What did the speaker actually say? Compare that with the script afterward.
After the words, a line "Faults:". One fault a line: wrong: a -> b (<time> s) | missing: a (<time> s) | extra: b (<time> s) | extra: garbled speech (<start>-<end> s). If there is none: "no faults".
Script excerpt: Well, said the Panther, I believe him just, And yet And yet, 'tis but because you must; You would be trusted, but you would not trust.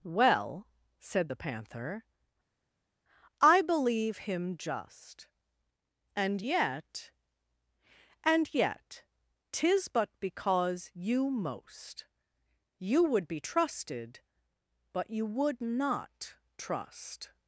Well, said the Panther, I believe him just, And yet And yet, 'tis but because you most; You would be trusted, but you would not trust.
Faults:
wrong: must -> most (11.3 s)